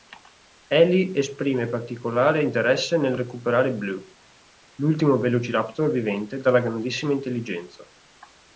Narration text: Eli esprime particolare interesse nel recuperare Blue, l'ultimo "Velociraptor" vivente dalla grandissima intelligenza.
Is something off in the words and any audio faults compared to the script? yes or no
no